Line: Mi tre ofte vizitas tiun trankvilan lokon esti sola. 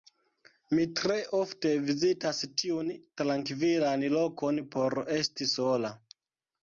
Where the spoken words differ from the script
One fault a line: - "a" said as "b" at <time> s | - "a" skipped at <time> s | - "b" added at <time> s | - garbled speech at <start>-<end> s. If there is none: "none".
- "por" added at 4.8 s